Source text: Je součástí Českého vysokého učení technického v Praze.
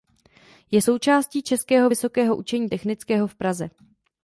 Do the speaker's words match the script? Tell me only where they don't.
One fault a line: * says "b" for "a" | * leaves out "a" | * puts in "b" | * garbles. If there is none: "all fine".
all fine